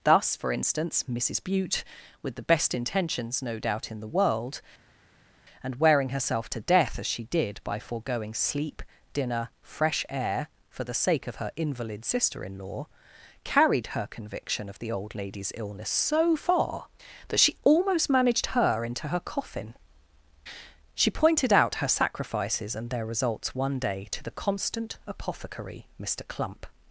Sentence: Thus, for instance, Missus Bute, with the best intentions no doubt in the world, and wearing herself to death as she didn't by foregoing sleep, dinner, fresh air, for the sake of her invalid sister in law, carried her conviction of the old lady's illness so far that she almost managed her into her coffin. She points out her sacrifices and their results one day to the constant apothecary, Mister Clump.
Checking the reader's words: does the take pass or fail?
fail